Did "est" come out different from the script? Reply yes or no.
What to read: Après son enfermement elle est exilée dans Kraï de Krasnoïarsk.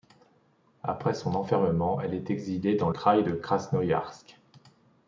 no